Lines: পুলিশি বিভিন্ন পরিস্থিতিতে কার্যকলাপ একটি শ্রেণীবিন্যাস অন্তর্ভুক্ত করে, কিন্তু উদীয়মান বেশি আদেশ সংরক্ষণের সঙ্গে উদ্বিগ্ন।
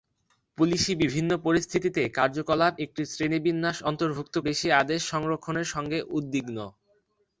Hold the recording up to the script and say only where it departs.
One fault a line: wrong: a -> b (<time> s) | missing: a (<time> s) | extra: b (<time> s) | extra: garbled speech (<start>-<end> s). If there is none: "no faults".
missing: করে কিন্তু উদীয়মান (4.4 s)